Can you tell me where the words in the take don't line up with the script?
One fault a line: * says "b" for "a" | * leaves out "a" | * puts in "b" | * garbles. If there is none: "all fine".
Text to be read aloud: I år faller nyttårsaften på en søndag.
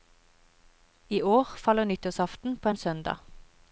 all fine